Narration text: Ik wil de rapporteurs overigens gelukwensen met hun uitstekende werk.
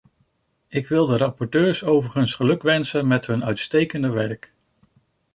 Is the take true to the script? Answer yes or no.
yes